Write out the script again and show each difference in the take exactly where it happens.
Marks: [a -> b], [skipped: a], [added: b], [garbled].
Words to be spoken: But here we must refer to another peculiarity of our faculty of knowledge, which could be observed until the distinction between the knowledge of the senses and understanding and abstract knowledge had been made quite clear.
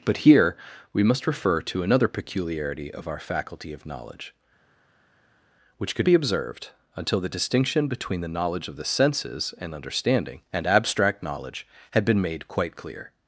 But here we must refer to another peculiarity of our faculty of knowledge, which could be observed until the distinction between the knowledge of the senses and understanding and abstract knowledge had been made quite clear.